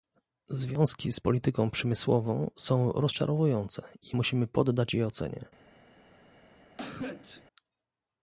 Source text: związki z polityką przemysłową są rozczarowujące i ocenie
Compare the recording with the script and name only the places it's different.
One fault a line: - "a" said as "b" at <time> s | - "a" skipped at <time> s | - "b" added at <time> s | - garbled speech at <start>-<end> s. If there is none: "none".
- "musimy poddać je" added at 4.1 s